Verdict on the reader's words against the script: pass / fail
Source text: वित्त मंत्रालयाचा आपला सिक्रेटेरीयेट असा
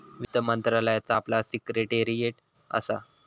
pass